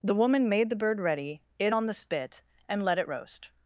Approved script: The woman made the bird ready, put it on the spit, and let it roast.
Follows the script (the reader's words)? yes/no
no